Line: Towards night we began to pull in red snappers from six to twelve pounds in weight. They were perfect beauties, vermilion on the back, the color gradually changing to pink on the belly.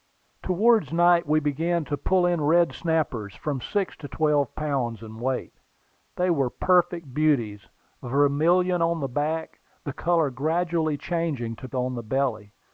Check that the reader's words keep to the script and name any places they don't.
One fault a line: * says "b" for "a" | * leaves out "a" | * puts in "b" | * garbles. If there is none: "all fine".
* leaves out "pink"